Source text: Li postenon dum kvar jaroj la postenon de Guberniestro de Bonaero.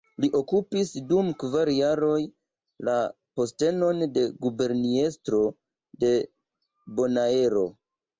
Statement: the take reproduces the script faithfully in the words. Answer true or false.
false